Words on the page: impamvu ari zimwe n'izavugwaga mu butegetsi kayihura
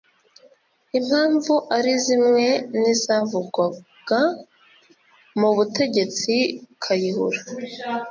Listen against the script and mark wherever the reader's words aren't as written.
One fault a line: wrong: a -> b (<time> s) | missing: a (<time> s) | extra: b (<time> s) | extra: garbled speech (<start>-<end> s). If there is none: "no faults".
no faults